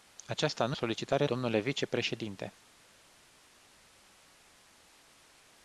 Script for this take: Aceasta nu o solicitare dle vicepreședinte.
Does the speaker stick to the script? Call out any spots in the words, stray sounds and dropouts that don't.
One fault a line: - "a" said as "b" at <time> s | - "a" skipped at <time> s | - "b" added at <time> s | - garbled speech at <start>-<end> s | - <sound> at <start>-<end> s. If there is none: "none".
none